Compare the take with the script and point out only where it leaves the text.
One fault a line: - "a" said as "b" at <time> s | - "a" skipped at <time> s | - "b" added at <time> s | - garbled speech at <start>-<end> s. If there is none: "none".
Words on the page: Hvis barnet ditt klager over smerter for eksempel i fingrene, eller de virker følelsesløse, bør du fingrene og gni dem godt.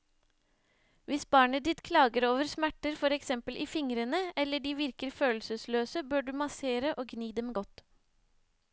- "fingrene" said as "massere" at 6.4 s